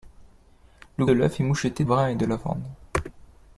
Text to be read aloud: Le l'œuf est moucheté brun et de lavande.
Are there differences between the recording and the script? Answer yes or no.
no